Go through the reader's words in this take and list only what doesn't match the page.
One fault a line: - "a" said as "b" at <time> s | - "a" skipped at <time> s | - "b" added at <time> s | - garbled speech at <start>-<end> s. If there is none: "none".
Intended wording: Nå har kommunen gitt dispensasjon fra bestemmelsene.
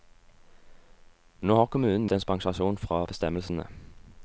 - "gitt" skipped at 2.1 s